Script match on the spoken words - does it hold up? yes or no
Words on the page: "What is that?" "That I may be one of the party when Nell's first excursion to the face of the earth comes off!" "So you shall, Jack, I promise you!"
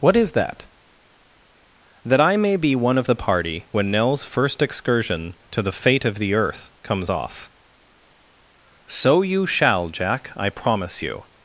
no